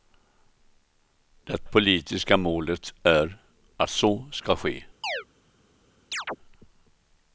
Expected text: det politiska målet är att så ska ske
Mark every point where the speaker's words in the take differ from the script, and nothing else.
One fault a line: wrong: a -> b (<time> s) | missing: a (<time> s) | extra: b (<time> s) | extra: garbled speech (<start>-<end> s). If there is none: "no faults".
no faults